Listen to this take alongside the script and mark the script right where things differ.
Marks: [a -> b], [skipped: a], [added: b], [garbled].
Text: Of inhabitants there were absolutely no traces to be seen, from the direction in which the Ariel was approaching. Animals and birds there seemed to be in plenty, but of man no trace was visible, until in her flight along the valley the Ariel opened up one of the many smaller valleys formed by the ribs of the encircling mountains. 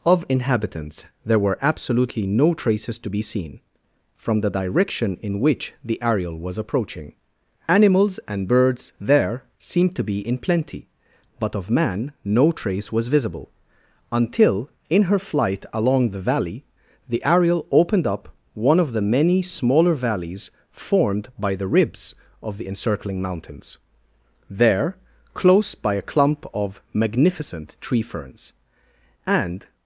Of inhabitants there were absolutely no traces to be seen, from the direction in which the Ariel was approaching. Animals and birds there seemed to be in plenty, but of man no trace was visible, until in her flight along the valley the Ariel opened up one of the many smaller valleys formed by the ribs of the encircling mountains. [added: There close by a clump of magnificent tree ferns and]